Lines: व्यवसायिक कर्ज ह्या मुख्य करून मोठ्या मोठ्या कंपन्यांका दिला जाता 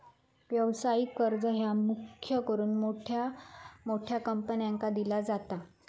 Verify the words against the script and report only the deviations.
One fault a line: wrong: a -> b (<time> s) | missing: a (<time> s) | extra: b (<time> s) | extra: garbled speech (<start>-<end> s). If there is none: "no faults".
no faults